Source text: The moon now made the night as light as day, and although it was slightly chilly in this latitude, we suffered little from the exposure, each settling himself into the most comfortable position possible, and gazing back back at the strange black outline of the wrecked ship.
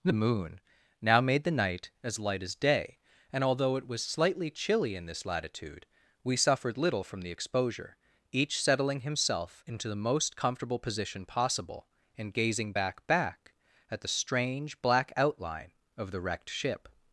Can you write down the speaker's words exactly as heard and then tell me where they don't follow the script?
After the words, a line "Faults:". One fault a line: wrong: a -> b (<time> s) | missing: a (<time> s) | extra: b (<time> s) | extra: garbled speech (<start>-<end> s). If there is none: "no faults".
The moon now made the night as light as day, and although it was slightly chilly in this latitude, we suffered little from the exposure, each settling himself into the most comfortable position possible, and gazing back back at the strange black outline of the wrecked ship.
Faults:
no faults